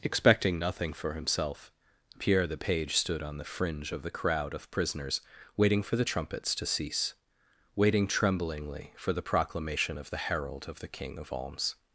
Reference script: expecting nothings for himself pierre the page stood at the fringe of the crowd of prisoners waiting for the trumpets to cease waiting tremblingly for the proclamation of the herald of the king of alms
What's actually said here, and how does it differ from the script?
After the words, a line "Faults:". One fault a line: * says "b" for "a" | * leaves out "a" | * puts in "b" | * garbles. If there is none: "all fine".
expecting nothing for himself pierre the page stood on the fringe of the crowd of prisoners waiting for the trumpets to cease waiting tremblingly for the proclamation of the herald of the king of alms
Faults:
* says "nothing" for "nothings"
* says "on" for "at"